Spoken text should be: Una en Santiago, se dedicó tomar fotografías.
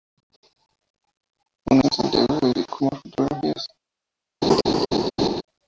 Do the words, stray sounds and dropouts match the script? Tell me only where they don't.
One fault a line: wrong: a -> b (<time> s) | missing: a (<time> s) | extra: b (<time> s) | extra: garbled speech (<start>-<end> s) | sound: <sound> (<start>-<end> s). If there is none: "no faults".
sound: laugh (4.4-5.4 s)